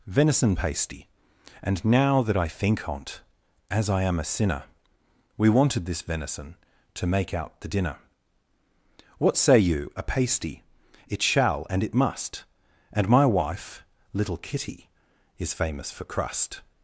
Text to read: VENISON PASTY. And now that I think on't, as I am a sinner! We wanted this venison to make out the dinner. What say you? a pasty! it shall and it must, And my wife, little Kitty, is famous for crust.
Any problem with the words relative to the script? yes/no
no